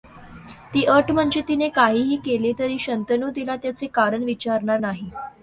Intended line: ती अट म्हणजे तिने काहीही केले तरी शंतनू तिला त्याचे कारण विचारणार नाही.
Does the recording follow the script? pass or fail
pass